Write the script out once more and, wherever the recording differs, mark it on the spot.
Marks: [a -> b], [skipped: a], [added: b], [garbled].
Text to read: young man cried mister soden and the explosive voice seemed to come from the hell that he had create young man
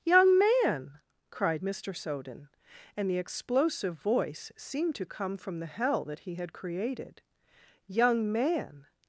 young man cried mister soden and the explosive voice seemed to come from the hell that he had [create -> created] young man